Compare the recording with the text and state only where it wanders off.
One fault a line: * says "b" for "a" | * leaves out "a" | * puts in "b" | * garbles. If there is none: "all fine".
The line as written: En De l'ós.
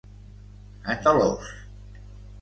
all fine